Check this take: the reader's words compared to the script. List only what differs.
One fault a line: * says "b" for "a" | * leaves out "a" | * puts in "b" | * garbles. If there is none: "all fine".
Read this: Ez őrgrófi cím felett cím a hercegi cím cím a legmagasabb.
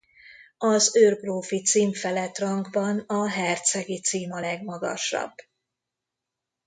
* says "Az" for "Ez"
* says "rangban" for "cím"
* leaves out "cím"